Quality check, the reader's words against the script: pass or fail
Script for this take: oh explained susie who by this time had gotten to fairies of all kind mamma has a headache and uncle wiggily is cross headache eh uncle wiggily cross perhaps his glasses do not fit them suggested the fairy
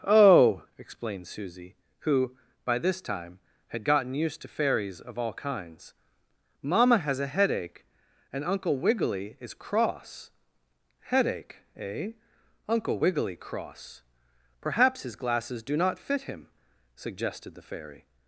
fail